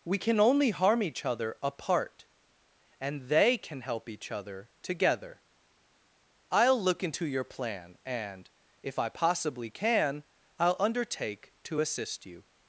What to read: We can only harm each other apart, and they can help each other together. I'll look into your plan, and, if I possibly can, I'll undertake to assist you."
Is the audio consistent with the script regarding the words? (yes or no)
yes